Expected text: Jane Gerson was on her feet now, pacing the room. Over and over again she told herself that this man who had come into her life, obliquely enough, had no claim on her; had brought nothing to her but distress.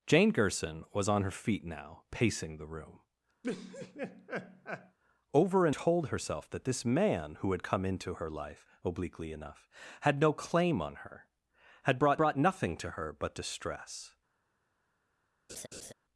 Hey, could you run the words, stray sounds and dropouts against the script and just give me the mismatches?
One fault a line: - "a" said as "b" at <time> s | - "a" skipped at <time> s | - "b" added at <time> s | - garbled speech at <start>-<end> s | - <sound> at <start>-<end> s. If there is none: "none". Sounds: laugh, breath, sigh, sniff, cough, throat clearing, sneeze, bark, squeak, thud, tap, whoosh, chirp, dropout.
- laugh at 3.4-5.0 s
- "over again she" skipped at 5.8 s
- "brought" added at 12.2 s
- laugh at 15.5-15.9 s